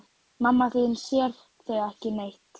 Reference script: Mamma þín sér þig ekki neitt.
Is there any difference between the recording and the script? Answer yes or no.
no